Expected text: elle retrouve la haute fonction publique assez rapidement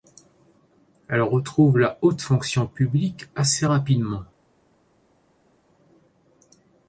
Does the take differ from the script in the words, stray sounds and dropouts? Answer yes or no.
no